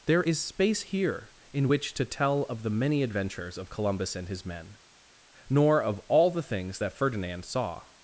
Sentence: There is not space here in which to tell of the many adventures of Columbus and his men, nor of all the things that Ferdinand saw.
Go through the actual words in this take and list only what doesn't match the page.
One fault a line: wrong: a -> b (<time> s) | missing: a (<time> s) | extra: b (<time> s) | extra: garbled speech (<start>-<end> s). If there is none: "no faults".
missing: not (0.4 s)